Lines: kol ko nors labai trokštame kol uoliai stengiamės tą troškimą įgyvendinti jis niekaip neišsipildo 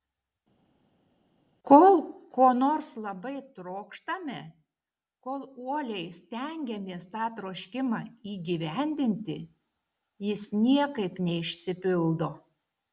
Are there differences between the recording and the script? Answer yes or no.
no